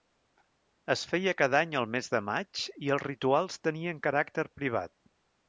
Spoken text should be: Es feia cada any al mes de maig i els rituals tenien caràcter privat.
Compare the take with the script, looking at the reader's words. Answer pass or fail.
pass